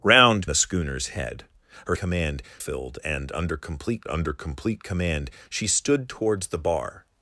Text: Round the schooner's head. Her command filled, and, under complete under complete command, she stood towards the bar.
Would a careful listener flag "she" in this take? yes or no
no